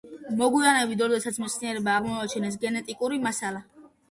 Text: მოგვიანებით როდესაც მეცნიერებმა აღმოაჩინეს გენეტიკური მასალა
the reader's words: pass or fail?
pass